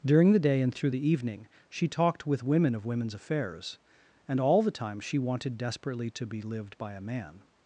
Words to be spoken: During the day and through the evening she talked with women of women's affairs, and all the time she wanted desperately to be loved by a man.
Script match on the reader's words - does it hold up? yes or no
no